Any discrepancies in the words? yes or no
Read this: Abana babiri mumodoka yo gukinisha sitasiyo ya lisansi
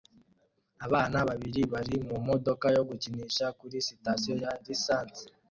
yes